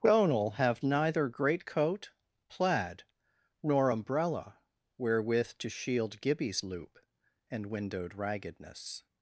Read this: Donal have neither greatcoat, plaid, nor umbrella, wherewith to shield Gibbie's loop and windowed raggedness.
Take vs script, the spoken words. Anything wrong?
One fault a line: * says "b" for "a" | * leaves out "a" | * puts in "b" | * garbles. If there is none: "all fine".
all fine